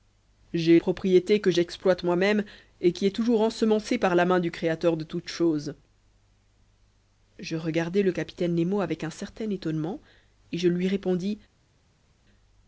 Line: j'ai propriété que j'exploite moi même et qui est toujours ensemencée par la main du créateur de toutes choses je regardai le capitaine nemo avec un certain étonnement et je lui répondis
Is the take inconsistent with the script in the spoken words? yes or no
no